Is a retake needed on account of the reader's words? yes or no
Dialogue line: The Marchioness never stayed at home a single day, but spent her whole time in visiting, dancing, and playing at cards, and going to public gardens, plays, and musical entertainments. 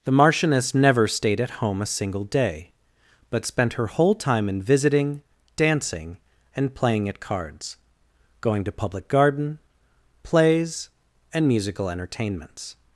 yes